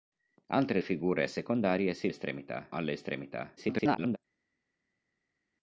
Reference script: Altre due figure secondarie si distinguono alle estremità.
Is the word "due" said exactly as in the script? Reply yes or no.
no